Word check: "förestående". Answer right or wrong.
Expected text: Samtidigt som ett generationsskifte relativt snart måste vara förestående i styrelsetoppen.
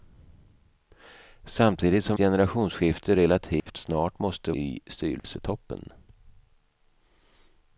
wrong